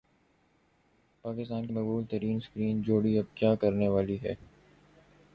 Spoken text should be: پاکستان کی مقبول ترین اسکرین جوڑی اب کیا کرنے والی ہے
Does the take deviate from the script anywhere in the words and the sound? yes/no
no